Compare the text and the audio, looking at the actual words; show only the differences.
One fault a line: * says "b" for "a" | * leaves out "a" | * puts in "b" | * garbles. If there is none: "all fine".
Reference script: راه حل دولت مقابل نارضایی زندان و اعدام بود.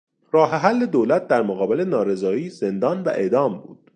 * puts in "در"